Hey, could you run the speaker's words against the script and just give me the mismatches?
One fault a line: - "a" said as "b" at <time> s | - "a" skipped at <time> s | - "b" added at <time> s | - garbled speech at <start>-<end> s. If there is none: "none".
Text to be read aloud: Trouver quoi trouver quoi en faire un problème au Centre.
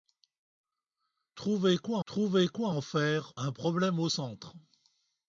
none